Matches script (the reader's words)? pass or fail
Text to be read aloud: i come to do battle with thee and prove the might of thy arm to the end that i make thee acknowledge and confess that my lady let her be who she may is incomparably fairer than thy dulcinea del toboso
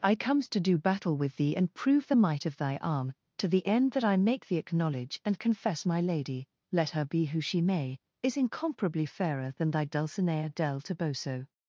fail